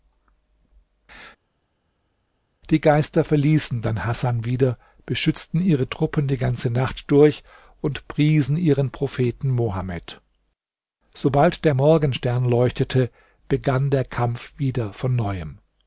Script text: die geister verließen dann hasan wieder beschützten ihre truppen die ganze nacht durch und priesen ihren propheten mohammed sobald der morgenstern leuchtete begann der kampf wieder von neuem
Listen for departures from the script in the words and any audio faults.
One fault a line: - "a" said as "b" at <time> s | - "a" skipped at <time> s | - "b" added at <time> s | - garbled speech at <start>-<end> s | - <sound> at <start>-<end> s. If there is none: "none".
none